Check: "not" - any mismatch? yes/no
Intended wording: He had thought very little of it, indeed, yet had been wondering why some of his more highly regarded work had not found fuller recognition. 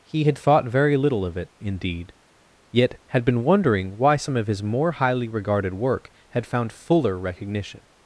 yes